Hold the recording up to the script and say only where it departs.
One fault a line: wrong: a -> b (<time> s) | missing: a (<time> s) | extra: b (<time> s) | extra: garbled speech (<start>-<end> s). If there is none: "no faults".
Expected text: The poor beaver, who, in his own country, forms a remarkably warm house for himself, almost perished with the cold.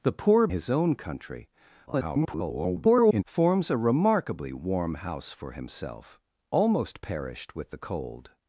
missing: beaver who in (0.5 s)
extra: garbled speech (1.9-3.2 s)